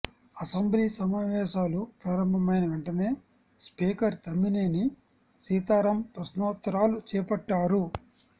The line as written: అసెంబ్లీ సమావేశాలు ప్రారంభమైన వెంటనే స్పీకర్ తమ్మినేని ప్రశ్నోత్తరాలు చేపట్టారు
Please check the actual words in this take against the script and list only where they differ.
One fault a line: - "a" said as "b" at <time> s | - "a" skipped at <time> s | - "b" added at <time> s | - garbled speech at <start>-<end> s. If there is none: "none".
- "సీతారాం" added at 5.4 s